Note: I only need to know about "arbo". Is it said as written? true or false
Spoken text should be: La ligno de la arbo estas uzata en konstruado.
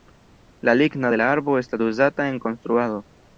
true